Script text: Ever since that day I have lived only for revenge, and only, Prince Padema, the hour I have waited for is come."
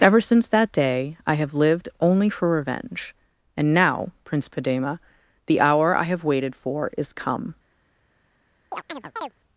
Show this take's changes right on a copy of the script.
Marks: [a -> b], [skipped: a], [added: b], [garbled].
Ever since that day I have lived only for revenge, and [only, -> now] Prince Padema, the hour I have waited for is come."